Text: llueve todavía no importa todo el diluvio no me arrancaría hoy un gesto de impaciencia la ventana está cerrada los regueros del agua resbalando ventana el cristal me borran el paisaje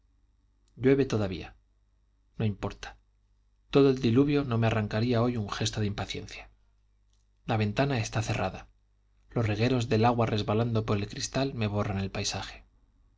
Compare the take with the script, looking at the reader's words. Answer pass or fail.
fail